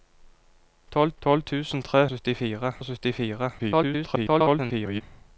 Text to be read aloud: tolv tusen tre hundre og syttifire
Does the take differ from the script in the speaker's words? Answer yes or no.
yes